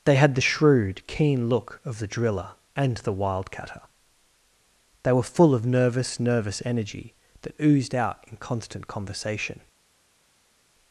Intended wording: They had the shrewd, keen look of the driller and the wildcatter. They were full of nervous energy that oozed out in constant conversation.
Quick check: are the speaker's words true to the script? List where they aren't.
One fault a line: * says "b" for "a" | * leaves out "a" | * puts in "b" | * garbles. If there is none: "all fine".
* puts in "nervous"